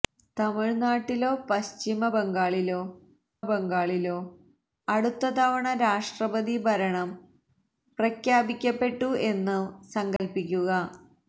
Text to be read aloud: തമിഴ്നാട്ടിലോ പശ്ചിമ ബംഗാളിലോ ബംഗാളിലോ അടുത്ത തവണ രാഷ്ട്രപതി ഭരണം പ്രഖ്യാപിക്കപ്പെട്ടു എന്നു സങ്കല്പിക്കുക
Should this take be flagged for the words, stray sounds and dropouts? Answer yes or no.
yes